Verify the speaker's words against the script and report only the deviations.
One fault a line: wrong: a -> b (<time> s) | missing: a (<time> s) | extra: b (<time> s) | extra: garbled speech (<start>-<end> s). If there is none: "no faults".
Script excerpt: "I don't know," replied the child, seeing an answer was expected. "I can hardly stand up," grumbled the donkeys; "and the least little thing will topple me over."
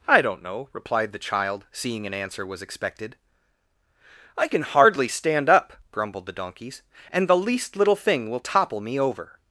no faults